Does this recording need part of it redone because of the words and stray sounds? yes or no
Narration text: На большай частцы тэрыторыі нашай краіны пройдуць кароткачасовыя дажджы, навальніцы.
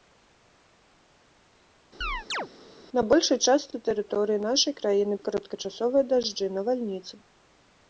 yes